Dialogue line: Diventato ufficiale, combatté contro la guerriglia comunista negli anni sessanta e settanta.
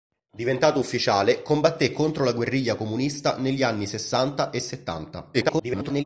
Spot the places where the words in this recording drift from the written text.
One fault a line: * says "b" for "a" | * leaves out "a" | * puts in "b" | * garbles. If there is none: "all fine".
* garbles